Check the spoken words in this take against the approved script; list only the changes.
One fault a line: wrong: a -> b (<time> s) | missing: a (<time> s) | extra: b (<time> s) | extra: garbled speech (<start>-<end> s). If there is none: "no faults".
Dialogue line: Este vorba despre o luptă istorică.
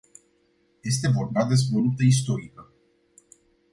no faults